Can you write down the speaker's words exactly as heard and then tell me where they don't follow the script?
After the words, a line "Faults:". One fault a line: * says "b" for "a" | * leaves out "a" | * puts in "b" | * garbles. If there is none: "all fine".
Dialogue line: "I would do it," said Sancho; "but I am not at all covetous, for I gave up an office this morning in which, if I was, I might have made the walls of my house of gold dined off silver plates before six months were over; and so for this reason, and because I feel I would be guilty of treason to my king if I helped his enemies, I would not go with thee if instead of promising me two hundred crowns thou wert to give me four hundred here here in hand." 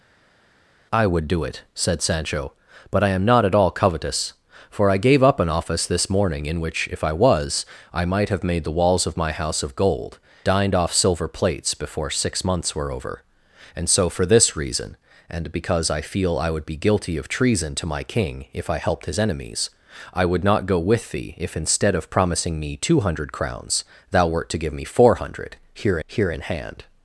"I would do it," said Sancho; "but I am not at all covetous, for I gave up an office this morning in which, if I was, I might have made the walls of my house of gold dined off silver plates before six months were over; and so for this reason, and because I feel I would be guilty of treason to my king if I helped his enemies, I would not go with thee if instead of promising me two hundred crowns thou wert to give me four hundred here here in hand."
Faults:
all fine